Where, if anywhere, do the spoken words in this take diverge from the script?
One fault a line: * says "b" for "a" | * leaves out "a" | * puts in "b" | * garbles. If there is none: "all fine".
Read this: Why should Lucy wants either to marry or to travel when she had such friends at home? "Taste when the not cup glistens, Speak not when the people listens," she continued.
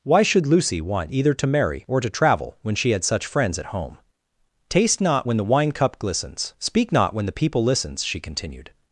* says "want" for "wants"
* puts in "not"
* says "wine" for "not"